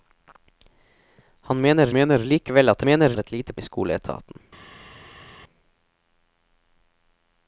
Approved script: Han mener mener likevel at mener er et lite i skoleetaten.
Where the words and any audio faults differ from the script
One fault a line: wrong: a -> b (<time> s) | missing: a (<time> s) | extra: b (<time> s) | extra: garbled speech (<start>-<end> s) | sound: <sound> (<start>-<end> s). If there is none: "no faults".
no faults